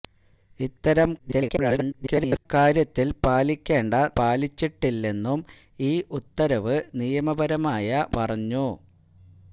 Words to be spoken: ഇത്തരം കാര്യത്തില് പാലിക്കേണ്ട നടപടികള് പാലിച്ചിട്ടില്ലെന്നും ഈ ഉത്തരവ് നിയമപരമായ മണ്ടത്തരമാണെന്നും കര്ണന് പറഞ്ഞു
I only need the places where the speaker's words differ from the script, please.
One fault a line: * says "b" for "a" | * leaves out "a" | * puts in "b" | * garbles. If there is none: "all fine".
* garbles
* leaves out "നടപടികള്"
* leaves out "മണ്ടത്തരമാണെന്നും കര്ണന്"